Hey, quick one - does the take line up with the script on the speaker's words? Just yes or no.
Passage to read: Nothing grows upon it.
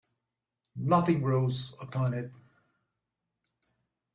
yes